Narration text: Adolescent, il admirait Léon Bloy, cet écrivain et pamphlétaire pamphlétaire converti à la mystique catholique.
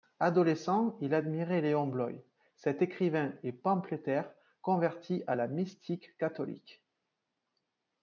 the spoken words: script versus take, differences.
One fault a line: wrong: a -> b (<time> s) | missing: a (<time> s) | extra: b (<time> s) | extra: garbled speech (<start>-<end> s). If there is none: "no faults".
missing: pamphlétaire (4.3 s)